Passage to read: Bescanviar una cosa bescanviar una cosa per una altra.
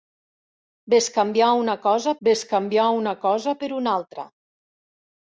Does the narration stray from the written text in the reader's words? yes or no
no